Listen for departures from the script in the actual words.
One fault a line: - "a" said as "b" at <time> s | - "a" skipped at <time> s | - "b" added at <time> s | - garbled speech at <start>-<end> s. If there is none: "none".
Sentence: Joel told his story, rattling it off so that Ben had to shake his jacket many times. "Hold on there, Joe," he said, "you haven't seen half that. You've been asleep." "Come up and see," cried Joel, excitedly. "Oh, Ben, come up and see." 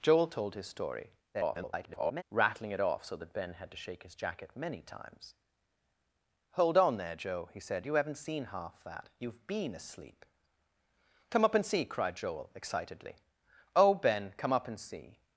- garbled speech at 1.3-2.2 s